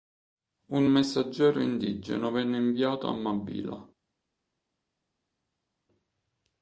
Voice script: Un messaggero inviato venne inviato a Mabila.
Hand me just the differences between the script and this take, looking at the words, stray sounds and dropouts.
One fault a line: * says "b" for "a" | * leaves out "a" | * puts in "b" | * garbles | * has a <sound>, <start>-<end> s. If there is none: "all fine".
* says "indigeno" for "inviato"